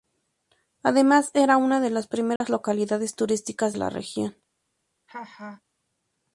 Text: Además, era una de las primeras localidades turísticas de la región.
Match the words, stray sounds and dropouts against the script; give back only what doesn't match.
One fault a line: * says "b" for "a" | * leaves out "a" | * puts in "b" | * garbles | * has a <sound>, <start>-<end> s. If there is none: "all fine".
* has a dropout, 2.4-2.4 s
* leaves out "de"
* has a laugh, 5.1-5.6 s